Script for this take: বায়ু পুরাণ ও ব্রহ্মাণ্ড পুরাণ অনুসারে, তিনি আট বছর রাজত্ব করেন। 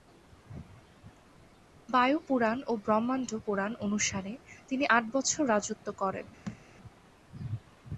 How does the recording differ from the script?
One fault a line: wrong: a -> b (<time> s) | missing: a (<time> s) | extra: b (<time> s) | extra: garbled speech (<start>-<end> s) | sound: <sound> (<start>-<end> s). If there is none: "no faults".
sound: thud (6.5-6.6 s)